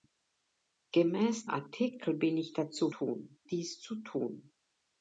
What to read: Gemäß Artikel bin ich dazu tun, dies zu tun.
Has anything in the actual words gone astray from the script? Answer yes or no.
no